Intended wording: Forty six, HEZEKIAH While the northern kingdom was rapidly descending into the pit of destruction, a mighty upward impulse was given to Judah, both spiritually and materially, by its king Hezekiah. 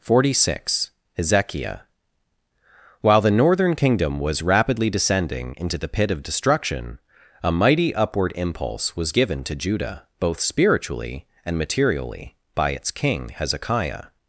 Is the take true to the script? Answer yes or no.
yes